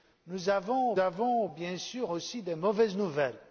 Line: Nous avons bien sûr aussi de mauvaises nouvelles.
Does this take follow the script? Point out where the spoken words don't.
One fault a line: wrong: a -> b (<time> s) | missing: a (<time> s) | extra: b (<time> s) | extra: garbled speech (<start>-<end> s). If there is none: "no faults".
extra: avons (1.0 s)